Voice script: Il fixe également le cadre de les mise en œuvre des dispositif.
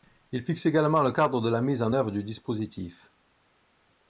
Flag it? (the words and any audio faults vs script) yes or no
yes